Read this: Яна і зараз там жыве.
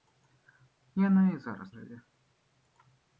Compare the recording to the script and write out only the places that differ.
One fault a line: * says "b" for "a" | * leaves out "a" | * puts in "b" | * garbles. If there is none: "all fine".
* leaves out "там"